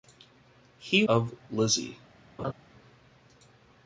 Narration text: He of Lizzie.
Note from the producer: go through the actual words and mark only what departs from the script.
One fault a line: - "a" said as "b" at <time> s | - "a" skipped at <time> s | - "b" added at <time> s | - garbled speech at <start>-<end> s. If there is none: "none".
none